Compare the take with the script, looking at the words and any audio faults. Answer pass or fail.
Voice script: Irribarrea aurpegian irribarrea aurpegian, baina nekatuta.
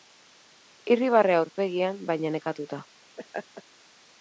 fail